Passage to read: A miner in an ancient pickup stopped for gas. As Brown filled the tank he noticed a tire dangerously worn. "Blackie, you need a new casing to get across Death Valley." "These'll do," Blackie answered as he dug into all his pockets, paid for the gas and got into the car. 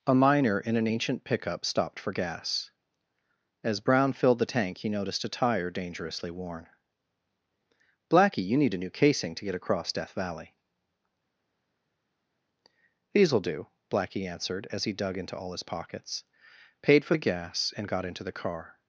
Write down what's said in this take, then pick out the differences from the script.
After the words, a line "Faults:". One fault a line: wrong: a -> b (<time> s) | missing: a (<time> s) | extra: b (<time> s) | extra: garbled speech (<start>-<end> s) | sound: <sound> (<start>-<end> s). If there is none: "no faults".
A miner in an ancient pickup stopped for gas. As Brown filled the tank he noticed a tire dangerously worn. "Blackie, you need a new casing to get across Death Valley." "These'll do," Blackie answered as he dug into all his pockets, paid for the gas and got into the car.
Faults:
no faults